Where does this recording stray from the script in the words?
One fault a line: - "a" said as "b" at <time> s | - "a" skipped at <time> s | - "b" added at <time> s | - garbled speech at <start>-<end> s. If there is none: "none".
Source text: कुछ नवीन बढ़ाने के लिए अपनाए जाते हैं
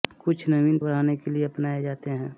none